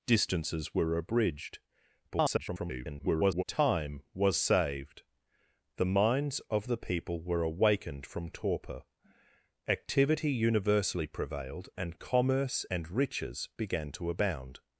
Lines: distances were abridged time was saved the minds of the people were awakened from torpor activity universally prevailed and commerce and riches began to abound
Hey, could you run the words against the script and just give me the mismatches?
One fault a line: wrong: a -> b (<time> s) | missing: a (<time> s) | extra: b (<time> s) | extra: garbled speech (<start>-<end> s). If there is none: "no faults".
extra: garbled speech (2.1-3.4 s)